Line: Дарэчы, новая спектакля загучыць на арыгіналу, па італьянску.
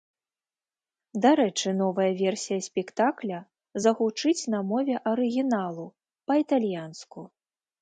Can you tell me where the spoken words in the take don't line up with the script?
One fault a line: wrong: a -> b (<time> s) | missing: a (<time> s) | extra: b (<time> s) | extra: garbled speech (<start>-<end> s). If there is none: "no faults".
extra: версія (2.2 s)
extra: мове (4.7 s)